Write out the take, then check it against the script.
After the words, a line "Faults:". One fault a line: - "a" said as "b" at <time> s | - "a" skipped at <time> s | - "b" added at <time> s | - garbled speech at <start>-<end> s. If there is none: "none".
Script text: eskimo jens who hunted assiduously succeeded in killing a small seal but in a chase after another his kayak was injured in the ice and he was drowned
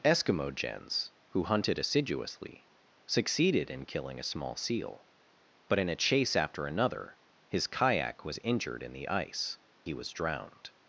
eskimo jens who hunted assiduously succeeded in killing a small seal but in a chase after another his kayak was injured in the ice he was drowned
Faults:
- "and" skipped at 9.6 s